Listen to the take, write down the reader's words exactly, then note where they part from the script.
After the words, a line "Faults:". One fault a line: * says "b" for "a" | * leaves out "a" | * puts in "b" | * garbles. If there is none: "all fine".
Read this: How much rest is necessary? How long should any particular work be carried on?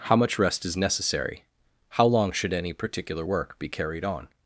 How much rest is necessary? How long should any particular work be carried on?
Faults:
all fine